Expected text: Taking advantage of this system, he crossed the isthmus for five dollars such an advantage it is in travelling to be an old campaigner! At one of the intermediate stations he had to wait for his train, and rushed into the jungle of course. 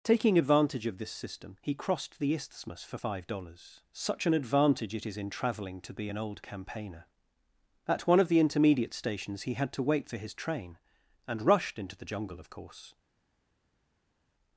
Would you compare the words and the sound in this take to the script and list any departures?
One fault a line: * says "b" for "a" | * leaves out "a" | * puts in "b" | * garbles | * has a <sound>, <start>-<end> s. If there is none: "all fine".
all fine